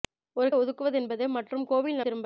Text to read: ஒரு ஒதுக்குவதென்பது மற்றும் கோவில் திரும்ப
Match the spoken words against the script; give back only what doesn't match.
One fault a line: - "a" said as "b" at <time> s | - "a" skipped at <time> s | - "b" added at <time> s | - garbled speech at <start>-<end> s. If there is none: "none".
none